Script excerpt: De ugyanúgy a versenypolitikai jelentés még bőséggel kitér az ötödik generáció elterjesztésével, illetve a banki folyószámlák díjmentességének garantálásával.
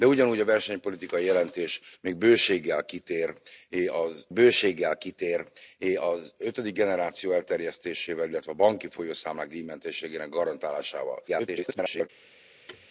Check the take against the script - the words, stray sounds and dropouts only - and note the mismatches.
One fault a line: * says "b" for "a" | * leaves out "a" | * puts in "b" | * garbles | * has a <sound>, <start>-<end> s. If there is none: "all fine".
* puts in "bőséggel kitér az"
* garbles
* has a thud, 12.7-12.9 s